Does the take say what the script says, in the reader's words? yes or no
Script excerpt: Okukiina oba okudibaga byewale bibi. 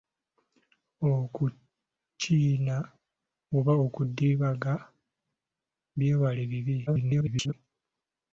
no